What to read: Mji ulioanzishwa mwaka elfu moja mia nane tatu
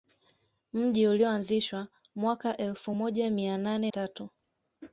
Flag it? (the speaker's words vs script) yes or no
no